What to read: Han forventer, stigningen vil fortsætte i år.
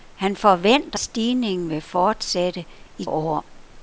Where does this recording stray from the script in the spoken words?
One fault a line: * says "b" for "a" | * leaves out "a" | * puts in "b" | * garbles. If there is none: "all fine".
all fine